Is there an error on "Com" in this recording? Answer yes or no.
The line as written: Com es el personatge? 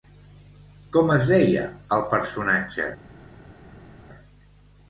no